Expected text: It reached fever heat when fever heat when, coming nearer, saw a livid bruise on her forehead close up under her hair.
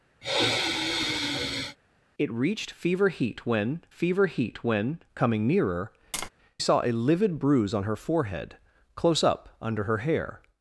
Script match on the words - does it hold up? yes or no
yes